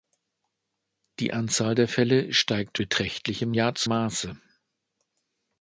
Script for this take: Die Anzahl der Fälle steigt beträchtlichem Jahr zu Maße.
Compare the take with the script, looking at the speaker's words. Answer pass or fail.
pass